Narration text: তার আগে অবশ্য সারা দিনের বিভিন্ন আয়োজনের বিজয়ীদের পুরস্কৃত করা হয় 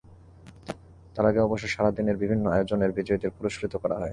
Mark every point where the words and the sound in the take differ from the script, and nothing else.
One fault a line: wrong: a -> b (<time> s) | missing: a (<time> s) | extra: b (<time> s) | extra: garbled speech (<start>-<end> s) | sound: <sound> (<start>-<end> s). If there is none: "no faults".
no faults